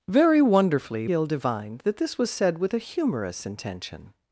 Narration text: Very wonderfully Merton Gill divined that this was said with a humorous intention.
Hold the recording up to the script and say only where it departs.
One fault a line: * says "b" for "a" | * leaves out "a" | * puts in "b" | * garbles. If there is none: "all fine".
* leaves out "Merton"